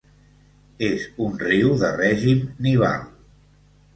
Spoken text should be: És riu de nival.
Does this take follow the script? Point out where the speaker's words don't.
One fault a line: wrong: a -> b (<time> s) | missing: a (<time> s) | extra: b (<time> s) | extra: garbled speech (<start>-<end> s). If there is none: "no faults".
extra: un (1.2 s)
extra: règim (2.0 s)